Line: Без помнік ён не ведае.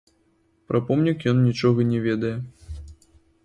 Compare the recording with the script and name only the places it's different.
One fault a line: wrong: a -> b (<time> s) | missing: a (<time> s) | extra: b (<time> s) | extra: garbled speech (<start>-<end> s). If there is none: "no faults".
wrong: Без -> Пра (0.7 s)
extra: нічога (1.5 s)